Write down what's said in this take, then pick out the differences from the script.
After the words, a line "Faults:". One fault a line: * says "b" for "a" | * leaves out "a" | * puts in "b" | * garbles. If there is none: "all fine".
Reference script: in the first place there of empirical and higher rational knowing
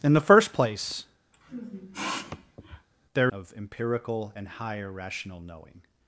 in the first place there of empirical and higher rational knowing
Faults:
all fine